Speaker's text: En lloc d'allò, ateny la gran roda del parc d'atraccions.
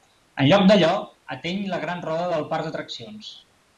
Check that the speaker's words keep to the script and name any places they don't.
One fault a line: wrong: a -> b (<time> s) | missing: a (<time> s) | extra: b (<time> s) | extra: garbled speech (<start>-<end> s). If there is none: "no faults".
no faults